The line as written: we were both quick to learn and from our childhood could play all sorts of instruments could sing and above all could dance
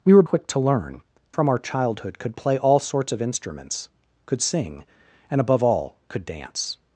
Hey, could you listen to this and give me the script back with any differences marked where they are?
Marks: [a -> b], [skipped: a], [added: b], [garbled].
we were [skipped: both] quick to learn [skipped: and] from our childhood could play all sorts of instruments could sing and above all could dance